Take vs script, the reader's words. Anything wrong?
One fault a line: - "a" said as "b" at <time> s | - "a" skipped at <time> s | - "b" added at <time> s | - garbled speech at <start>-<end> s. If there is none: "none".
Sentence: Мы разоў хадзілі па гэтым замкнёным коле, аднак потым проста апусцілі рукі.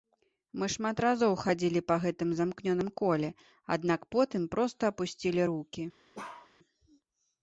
- "шмат" added at 0.8 s